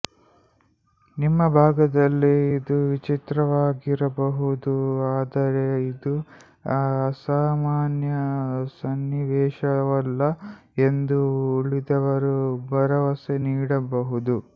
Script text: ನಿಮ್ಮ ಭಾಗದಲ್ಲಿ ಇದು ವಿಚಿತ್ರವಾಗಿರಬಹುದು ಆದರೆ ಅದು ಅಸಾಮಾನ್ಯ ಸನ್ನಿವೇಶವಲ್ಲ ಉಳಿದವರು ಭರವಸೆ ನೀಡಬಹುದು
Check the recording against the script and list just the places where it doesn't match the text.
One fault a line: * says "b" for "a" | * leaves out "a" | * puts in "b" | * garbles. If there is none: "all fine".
* says "ಇದು" for "ಅದು"
* puts in "ಎಂದು"